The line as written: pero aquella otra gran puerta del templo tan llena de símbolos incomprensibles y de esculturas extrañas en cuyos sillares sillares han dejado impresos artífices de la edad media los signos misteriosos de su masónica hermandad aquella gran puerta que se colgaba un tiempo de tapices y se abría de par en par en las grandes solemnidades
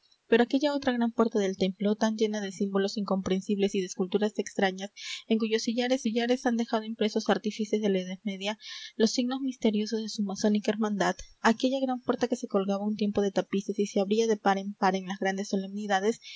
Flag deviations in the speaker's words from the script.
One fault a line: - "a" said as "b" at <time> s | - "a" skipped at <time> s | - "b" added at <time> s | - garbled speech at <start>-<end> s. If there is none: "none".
none